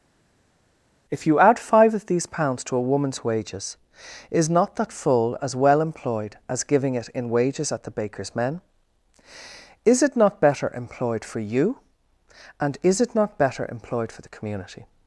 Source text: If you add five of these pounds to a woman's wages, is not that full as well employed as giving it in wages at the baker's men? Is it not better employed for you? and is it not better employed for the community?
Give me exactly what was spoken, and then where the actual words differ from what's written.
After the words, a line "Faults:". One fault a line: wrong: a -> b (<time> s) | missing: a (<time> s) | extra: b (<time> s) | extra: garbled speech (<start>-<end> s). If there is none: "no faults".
If you add five of these pounds to a woman's wages, is not that full as well employed as giving it in wages at the baker's men? Is it not better employed for you? and is it not better employed for the community?
Faults:
no faults